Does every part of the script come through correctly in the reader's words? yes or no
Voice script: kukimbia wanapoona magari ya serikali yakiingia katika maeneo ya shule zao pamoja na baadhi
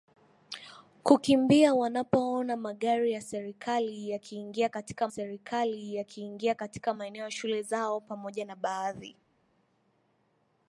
no